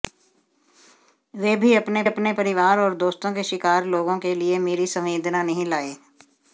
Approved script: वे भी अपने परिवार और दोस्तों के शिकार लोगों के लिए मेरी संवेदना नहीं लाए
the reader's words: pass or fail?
fail